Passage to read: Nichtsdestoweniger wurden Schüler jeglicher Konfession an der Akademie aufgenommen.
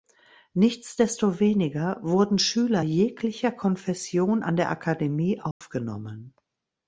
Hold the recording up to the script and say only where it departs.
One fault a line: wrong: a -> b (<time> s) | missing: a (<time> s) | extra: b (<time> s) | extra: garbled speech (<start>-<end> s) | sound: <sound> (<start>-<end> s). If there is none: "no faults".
sound: dropout (5.5-5.6 s)